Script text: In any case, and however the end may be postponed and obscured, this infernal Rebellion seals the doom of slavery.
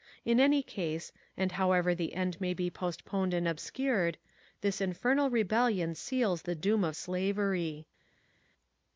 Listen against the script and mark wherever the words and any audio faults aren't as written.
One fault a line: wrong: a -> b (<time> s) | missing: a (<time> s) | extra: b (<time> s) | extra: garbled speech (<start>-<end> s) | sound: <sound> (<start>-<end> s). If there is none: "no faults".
no faults